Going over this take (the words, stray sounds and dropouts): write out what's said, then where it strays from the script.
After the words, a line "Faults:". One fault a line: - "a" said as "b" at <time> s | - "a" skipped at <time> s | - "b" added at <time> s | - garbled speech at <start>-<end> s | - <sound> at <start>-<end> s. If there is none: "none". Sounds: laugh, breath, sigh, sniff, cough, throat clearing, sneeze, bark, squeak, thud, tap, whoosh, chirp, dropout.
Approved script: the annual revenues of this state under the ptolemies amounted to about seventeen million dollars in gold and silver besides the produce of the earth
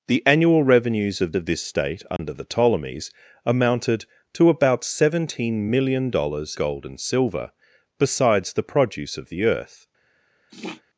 the annual revenues of of this state under the ptolemies amounted to about seventeen million dollars gold and silver besides the produce of the earth
Faults:
- "of" added at 1.3 s
- dropout at 2.2-2.2 s
- "in" skipped at 6.6 s
- sniff at 10.5-10.8 s